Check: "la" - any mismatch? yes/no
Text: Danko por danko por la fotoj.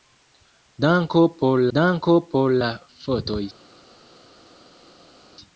no